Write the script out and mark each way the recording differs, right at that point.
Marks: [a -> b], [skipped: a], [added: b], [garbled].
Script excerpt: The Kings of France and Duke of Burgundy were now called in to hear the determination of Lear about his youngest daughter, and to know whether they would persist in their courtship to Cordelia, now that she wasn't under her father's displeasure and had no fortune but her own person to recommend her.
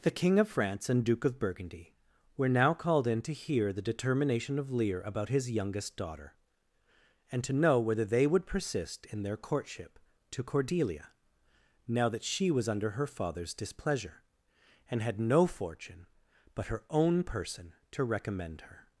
The [Kings -> King] of France and Duke of Burgundy were now called in to hear the determination of Lear about his youngest daughter, and to know whether they would persist in their courtship to Cordelia, now that she [wasn't -> was] under her father's displeasure and had no fortune but her own person to recommend her.